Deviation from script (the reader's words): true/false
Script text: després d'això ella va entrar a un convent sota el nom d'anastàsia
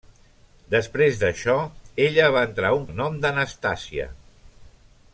true